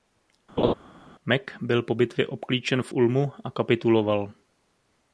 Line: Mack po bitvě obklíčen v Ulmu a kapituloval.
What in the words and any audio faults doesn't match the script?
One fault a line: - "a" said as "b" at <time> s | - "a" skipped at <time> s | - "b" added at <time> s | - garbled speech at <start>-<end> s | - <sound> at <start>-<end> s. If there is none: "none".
- laugh at 0.6-0.7 s
- "byl" added at 1.6 s